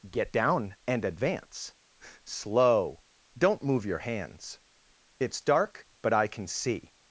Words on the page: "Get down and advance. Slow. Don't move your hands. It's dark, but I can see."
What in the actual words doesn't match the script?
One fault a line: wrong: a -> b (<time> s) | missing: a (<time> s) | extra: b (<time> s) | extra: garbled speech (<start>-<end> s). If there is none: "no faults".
no faults